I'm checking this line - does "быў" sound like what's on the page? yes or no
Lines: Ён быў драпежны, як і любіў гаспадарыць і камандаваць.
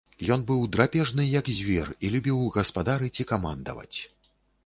yes